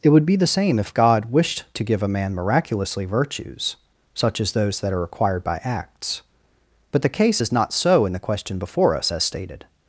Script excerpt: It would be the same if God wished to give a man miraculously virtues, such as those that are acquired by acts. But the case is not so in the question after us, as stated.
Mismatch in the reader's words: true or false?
true